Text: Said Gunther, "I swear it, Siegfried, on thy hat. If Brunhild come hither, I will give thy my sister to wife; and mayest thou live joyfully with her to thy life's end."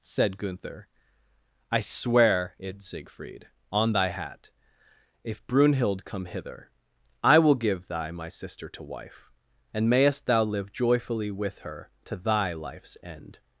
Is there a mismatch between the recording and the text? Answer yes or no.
no